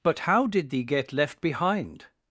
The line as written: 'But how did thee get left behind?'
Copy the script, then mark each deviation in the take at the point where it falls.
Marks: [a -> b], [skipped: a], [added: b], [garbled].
'But how did thee get left behind?'